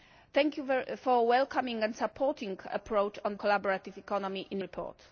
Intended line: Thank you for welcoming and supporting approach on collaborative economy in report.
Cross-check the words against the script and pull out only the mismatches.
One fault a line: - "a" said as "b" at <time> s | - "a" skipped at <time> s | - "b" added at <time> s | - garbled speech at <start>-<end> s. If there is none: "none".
none